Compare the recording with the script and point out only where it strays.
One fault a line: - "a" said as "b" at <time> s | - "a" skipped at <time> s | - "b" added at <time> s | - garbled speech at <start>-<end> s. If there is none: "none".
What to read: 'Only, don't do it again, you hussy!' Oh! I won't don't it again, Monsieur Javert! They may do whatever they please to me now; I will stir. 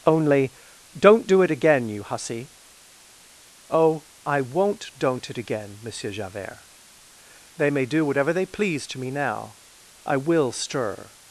none